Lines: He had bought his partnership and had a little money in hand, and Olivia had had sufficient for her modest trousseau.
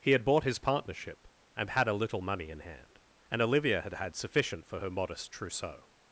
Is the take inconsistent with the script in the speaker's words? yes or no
no